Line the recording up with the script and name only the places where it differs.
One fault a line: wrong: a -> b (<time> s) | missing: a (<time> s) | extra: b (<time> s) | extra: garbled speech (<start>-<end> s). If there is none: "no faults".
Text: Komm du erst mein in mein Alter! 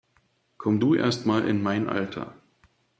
wrong: mein -> mal (1.2 s)